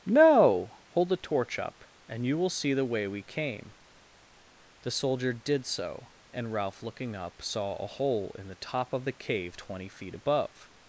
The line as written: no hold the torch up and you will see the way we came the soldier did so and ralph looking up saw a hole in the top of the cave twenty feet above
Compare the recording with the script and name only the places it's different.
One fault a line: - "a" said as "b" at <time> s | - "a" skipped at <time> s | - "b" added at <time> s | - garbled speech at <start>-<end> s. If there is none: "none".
none